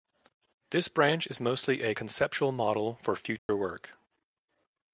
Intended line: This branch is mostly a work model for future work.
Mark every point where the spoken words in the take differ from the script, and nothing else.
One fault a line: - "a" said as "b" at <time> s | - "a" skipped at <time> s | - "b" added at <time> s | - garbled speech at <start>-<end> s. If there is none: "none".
- "work" said as "conceptual" at 1.9 s